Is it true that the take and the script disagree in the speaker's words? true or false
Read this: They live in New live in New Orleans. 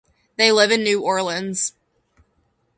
true